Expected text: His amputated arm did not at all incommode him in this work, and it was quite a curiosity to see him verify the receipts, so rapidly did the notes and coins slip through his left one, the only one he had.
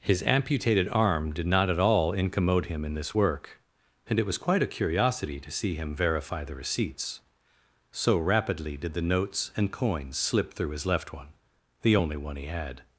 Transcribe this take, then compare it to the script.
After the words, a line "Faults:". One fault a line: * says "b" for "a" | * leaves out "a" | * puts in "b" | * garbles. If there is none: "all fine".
His amputated arm did not at all incommode him in this work, and it was quite a curiosity to see him verify the receipts, so rapidly did the notes and coins slip through his left one, the only one he had.
Faults:
all fine